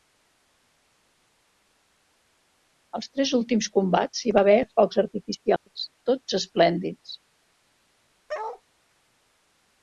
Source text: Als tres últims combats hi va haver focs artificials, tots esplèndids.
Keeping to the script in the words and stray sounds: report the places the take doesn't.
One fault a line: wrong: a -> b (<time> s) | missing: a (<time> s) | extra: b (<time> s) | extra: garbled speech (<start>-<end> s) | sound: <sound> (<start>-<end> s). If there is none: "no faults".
sound: dropout (5.6-5.7 s)
sound: bark (8.3-8.6 s)